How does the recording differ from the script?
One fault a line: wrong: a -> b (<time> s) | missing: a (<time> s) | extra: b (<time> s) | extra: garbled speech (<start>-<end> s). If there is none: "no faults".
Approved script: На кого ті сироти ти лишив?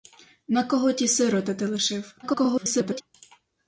extra: garbled speech (2.2-3.0 s)